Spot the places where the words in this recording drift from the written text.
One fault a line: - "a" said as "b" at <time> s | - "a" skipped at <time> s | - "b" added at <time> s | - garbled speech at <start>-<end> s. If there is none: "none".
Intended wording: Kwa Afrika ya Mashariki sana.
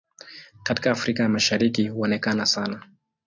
- "Kwa" said as "Katika" at 0.6 s
- "huonekana" added at 1.9 s